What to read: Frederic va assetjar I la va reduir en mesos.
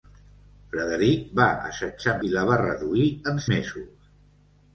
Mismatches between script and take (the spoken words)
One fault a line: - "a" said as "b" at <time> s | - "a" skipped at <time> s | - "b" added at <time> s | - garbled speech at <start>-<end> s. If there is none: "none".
none